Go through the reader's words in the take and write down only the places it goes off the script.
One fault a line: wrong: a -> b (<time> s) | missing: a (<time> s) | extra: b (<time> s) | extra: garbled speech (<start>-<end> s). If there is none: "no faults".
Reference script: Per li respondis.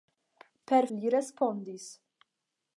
no faults